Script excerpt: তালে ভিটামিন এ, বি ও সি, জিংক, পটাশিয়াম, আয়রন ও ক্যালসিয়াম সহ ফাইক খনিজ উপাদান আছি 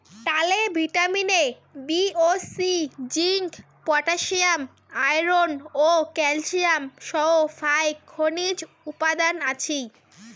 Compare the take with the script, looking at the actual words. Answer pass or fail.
pass